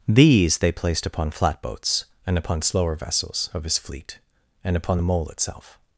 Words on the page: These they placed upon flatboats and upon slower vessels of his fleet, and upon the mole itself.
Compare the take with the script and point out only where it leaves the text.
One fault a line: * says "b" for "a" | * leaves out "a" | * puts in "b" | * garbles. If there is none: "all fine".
all fine